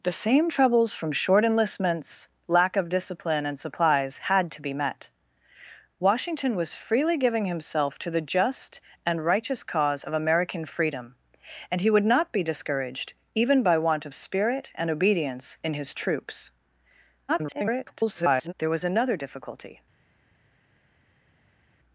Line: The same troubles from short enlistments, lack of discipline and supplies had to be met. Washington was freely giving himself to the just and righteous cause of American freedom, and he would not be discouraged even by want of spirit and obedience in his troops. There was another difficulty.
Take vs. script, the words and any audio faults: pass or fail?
fail